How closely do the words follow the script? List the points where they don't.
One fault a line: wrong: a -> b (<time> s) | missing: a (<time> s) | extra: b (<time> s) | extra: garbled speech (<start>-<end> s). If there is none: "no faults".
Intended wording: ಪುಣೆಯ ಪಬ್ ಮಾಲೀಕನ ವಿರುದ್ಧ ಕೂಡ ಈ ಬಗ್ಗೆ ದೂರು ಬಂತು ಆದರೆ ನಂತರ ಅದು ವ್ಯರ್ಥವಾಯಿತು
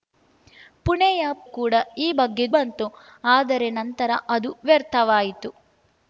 missing: ಪಬ್ ಮಾಲೀಕನ ವಿರುದ್ಧ (1.2 s)
missing: ದೂರು (2.5 s)